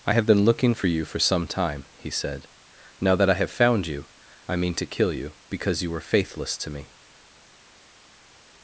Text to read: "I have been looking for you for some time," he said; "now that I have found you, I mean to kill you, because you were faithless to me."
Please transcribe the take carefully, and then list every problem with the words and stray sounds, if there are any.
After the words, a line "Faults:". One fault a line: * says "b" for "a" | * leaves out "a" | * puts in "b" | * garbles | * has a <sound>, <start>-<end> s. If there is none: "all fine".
"I have been looking for you for some time," he said; "now that I have found you, I mean to kill you, because you were faithless to me."
Faults:
all fine